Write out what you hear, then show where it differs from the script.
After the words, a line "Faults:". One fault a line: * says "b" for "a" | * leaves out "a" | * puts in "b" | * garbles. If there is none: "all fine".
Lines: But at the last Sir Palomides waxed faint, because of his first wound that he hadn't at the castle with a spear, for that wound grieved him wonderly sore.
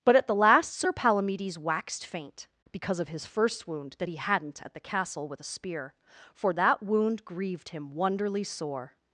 But at the last Sir Palomides waxed faint, because of his first wound that he hadn't at the castle with a spear, for that wound grieved him wonderly sore.
Faults:
all fine